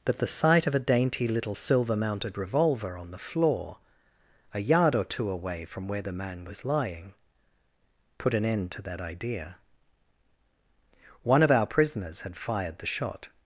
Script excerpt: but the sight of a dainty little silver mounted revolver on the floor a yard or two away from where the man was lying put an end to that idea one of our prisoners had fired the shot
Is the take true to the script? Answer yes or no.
yes